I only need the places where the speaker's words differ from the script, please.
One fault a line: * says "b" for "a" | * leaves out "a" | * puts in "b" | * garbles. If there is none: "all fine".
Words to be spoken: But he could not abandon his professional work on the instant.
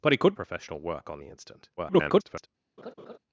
* leaves out "not abandon his"
* garbles